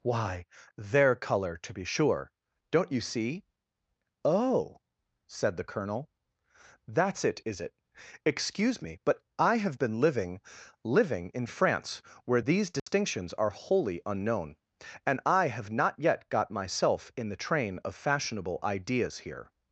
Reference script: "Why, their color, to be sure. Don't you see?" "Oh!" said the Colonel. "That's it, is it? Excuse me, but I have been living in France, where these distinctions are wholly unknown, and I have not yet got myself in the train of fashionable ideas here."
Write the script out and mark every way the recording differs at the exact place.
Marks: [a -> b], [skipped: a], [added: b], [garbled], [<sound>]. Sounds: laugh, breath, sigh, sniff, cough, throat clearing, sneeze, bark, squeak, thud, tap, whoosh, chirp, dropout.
"Why, their color, to be sure. Don't you see?" "Oh!" said the Colonel. "That's it, is it? Excuse me, but I have been living [added: living] in France, where these distinctions [dropout] are wholly unknown, and I have not yet got myself in the train of fashionable ideas here."